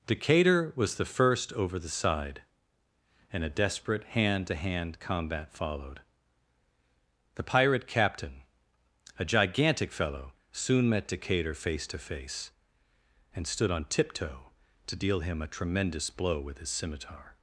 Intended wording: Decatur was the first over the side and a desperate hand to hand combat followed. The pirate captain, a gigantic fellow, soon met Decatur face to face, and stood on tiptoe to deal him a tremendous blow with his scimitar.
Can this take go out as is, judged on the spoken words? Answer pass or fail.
pass